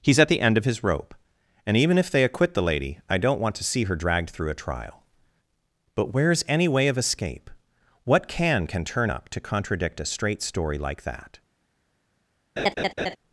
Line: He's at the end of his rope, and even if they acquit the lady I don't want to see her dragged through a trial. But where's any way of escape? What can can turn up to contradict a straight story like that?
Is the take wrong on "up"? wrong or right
right